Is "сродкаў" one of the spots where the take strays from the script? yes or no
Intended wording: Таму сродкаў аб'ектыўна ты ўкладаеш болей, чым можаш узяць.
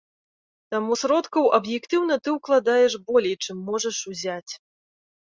no